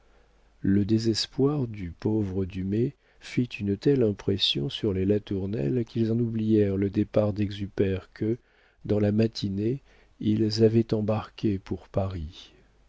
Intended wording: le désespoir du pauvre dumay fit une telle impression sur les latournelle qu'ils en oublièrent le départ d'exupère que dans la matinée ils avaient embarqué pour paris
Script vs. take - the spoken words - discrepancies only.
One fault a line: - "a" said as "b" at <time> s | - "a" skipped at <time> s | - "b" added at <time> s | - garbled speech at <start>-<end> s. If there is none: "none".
none